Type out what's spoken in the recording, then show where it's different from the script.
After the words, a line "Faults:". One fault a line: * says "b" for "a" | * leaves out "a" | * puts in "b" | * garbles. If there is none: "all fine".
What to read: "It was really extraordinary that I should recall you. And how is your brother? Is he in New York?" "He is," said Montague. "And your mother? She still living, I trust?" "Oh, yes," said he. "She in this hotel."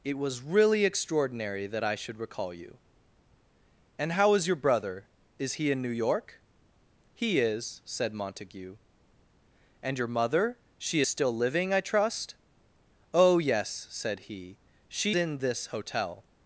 "It was really extraordinary that I should recall you. And how is your brother? Is he in New York?" "He is," said Montague. "And your mother? She still living, I trust?" "Oh, yes," said he. "She in this hotel."
Faults:
all fine